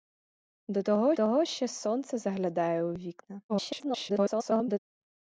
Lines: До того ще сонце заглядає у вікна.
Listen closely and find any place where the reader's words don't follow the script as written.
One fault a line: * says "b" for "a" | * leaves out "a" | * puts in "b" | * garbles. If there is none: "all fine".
* puts in "того"
* garbles